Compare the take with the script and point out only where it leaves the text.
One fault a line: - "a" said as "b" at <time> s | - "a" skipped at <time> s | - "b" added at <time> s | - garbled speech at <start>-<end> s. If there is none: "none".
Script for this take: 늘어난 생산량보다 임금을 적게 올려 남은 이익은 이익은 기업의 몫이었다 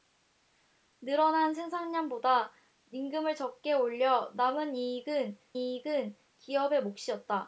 none